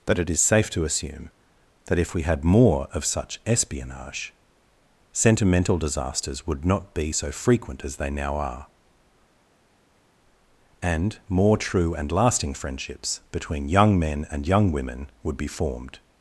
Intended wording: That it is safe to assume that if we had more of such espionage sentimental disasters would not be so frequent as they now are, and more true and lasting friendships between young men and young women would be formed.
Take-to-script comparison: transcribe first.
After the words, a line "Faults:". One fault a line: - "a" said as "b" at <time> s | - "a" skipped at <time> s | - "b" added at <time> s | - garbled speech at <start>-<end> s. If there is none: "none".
That it is safe to assume that if we had more of such espionage sentimental disasters would not be so frequent as they now are, and more true and lasting friendships between young men and young women would be formed.
Faults:
none